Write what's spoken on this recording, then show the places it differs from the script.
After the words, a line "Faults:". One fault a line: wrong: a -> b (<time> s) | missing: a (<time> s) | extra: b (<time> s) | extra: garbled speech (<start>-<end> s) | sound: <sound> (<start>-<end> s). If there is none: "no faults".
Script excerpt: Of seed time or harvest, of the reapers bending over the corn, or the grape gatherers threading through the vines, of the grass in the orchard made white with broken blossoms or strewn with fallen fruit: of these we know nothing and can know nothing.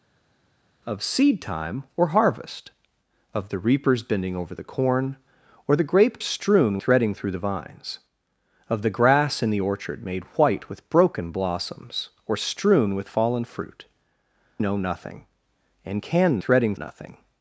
Of seed time or harvest, of the reapers bending over the corn, or the grape strewn threading through the vines, of the grass in the orchard made white with broken blossoms or strewn with fallen fruit: know nothing and can threading nothing.
Faults:
wrong: gatherers -> strewn (6.2 s)
missing: of these we (13.8 s)
wrong: know -> threading (16.4 s)